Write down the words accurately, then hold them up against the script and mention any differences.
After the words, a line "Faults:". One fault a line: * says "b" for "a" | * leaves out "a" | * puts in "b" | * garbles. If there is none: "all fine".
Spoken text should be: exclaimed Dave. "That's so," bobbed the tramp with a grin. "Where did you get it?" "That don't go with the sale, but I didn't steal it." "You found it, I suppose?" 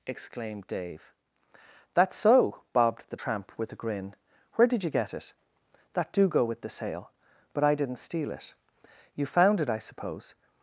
exclaimed Dave. "That's so," bobbed the tramp with a grin. "Where did you get it?" "That do go with the sale, but I didn't steal it." "You found it, I suppose?"
Faults:
* says "do" for "don't"